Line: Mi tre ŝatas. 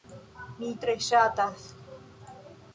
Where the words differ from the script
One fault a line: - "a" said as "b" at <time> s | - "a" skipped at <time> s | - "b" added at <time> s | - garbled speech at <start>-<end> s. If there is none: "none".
none